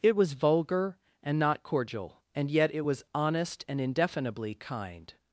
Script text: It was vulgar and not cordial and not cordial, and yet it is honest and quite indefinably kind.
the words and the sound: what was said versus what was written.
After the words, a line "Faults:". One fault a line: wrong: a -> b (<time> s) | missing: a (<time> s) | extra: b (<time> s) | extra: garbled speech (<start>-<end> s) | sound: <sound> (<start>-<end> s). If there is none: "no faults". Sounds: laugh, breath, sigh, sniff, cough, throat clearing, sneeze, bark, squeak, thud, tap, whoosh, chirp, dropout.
It was vulgar and not cordial, and yet it was honest and indefinably kind.
Faults:
missing: not cordial and (2.5 s)
wrong: is -> was (2.8 s)
missing: quite (3.8 s)